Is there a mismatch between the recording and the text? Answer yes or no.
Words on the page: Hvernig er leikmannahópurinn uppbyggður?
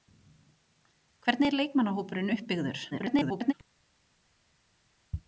yes